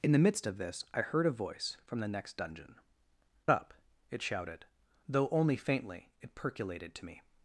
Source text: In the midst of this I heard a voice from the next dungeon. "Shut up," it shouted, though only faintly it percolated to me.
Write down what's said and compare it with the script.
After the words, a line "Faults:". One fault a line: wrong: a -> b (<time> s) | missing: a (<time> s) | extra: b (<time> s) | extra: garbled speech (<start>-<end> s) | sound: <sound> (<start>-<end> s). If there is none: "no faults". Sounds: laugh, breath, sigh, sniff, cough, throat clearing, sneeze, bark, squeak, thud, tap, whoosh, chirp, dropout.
In the midst of this I heard a voice from the next dungeon. "Up," it shouted, though only faintly it percolated to me.
Faults:
missing: Shut (2.8 s)